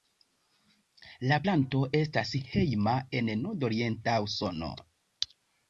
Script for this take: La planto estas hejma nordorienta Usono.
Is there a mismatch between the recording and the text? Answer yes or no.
yes